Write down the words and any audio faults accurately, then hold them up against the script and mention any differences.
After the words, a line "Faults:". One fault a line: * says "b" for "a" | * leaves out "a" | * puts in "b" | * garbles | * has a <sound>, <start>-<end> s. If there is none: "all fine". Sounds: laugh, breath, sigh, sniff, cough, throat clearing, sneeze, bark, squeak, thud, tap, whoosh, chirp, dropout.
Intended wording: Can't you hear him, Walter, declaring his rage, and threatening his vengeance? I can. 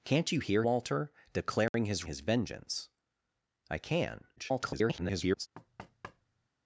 Can't you hear Walter, declaring his his vengeance? I can. [garbled]
Faults:
* leaves out "him"
* has a dropout, 1.7-1.7 s
* leaves out "rage and threatening"
* garbles
* has a thud, 5.5-6.5 s